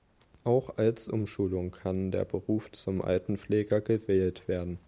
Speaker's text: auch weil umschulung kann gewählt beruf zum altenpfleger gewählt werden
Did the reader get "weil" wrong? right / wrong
wrong